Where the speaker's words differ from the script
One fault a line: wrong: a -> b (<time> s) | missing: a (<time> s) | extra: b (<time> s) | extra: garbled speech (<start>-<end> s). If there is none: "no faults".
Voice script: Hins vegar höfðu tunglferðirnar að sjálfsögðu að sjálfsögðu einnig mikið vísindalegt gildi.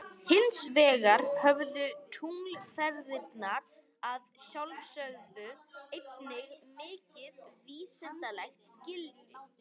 missing: að sjálfsögðu (5.5 s)